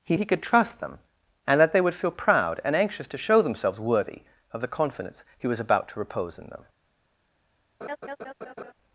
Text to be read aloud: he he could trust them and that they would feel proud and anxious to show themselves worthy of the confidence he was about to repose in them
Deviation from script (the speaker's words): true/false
false